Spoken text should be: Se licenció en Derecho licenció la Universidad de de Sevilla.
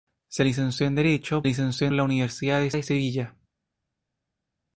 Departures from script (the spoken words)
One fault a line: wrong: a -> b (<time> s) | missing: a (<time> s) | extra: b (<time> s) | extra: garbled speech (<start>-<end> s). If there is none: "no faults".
no faults